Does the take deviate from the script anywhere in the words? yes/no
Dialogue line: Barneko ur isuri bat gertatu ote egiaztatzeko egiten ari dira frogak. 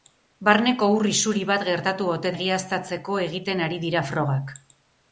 no